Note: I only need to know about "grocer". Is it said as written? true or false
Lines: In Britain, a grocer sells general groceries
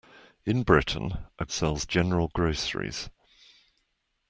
false